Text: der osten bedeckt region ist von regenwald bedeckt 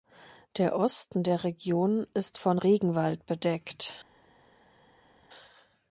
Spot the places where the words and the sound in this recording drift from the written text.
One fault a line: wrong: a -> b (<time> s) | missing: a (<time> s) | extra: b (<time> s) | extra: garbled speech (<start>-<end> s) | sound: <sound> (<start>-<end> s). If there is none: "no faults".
wrong: bedeckt -> der (1.2 s)